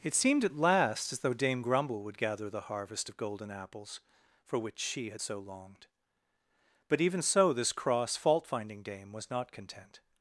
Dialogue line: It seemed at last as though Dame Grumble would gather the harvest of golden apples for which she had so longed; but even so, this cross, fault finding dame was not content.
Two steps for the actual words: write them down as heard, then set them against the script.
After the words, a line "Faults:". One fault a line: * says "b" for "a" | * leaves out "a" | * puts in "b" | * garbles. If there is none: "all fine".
It seemed at last as though Dame Grumble would gather the harvest of golden apples for which she had so longed; but even so, this cross, fault finding dame was not content.
Faults:
all fine